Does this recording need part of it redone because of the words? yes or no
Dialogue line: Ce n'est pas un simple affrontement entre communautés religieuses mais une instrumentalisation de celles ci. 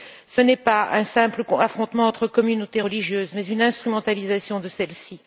no